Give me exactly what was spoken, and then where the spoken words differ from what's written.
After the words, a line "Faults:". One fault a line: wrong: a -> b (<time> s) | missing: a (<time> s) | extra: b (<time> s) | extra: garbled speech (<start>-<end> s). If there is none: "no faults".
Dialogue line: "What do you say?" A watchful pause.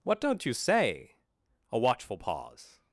"What don't you say?" A watchful pause.
Faults:
wrong: do -> don't (0.2 s)